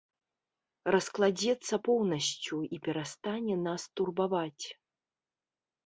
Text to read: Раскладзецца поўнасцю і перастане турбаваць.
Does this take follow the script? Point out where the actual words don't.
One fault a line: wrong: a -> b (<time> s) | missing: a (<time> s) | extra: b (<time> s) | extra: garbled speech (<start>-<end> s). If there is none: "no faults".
extra: нас (3.7 s)